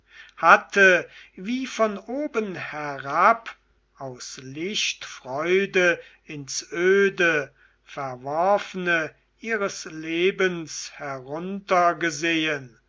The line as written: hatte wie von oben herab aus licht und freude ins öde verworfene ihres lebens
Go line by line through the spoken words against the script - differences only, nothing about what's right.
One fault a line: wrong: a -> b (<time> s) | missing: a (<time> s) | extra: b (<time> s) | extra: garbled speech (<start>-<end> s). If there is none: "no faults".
missing: und (5.0 s)